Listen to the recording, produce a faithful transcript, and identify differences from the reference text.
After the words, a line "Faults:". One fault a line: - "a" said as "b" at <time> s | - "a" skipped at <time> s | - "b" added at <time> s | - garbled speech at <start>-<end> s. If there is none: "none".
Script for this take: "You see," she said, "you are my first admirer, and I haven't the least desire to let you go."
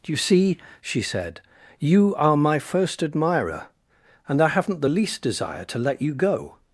"You see," she said, "you are my first admirer, and I haven't the least desire to let you go."
Faults:
none